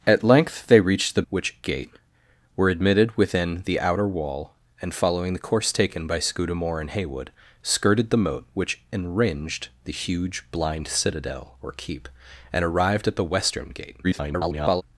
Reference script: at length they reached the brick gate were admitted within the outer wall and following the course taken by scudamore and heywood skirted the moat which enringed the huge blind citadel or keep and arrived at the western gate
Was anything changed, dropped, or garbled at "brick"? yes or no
yes